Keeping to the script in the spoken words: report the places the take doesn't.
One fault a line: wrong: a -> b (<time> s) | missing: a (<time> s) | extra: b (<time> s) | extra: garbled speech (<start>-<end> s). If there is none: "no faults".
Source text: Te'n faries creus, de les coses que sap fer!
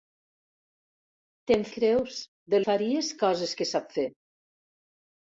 missing: faries (1.6 s)
wrong: les -> faries (2.6 s)